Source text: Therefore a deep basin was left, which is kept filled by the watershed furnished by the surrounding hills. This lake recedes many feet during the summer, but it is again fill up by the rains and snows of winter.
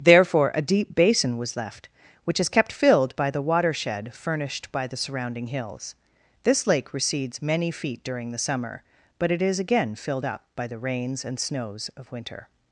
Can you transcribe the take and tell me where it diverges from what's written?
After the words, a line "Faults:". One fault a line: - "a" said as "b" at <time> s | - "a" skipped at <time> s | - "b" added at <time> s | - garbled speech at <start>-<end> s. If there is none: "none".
Therefore a deep basin was left, which is kept filled by the watershed furnished by the surrounding hills. This lake recedes many feet during the summer, but it is again filled up by the rains and snows of winter.
Faults:
- "fill" said as "filled" at 10.0 s